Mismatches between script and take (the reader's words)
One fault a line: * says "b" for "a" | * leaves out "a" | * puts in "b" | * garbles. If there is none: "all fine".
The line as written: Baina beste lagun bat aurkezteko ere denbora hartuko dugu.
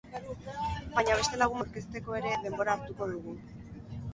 * leaves out "bat"